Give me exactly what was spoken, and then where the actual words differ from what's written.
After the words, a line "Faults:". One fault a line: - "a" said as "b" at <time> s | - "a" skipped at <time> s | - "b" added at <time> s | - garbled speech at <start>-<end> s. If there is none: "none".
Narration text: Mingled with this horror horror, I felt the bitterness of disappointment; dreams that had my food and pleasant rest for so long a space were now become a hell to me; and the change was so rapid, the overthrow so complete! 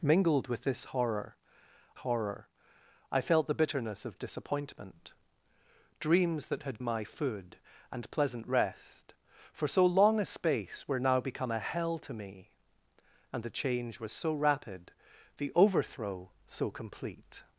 Mingled with this horror horror, I felt the bitterness of disappointment; dreams that had my food and pleasant rest for so long a space were now become a hell to me; and the change was so rapid, the overthrow so complete!
Faults:
none